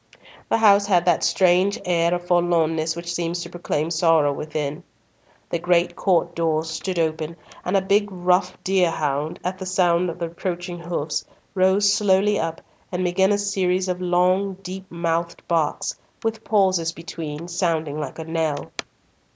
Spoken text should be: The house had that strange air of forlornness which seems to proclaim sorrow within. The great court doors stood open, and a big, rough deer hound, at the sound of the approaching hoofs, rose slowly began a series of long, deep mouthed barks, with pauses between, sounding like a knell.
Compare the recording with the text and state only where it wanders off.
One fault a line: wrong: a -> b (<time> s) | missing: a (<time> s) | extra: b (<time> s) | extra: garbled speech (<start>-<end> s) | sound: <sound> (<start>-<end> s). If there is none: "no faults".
extra: up and (12.4 s)